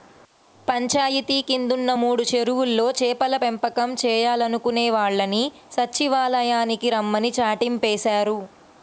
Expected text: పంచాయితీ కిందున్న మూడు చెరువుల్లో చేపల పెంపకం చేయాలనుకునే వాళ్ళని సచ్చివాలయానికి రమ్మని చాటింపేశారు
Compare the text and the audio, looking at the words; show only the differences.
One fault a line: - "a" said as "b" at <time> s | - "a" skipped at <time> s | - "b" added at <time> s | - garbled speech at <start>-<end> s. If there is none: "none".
none